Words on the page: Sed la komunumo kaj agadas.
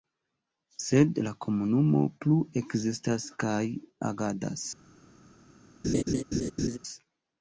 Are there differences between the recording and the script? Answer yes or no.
yes